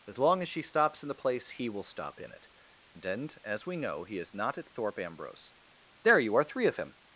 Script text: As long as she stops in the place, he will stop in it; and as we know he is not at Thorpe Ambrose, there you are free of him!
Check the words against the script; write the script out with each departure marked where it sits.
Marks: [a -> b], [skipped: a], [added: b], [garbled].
As long as she stops in the place, he will stop in it; and as we know he is not at Thorpe Ambrose, there you are [free -> three] of him!